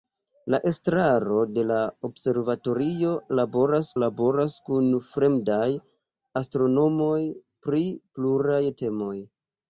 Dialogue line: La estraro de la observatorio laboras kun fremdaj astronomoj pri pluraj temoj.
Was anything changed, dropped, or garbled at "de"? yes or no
no